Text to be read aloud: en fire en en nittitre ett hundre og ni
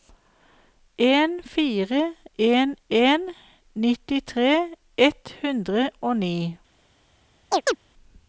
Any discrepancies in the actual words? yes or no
no